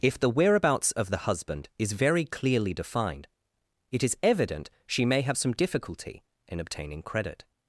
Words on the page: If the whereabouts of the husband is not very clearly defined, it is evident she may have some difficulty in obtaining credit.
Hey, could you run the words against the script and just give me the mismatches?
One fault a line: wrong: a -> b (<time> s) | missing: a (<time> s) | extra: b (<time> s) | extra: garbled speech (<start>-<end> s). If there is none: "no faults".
missing: not (1.9 s)